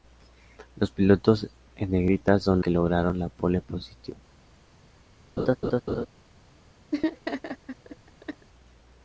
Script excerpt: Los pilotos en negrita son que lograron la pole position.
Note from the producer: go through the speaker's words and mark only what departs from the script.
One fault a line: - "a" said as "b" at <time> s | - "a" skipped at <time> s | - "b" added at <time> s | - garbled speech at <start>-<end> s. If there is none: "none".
none